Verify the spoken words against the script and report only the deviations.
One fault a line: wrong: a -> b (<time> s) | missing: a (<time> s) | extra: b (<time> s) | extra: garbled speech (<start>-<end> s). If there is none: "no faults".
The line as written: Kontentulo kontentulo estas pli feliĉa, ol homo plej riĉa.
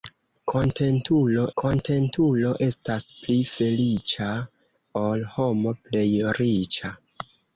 no faults